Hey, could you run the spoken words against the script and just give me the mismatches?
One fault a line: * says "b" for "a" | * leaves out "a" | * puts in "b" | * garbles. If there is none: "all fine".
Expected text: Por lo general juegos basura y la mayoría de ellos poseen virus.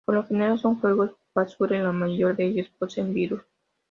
* puts in "son"